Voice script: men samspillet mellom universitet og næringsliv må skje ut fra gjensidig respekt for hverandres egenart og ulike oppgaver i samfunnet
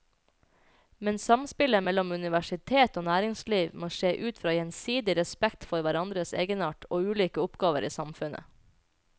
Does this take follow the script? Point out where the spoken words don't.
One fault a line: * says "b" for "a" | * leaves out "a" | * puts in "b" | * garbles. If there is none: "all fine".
all fine